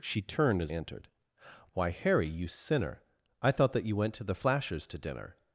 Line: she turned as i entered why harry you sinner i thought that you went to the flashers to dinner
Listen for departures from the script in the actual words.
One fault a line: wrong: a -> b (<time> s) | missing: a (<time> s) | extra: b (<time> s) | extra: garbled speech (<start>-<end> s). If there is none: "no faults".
missing: i (0.7 s)